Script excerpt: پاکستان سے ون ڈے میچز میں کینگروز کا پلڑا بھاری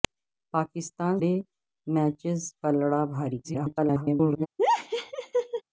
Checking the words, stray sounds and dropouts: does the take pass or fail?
fail